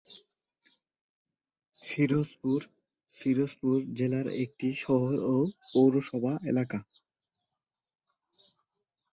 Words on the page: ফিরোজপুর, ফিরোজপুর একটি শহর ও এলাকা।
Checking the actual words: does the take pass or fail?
fail